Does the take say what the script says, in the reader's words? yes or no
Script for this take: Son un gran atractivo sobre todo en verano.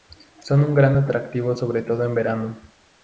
yes